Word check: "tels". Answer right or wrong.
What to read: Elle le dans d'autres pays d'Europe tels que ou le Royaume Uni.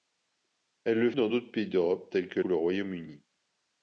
right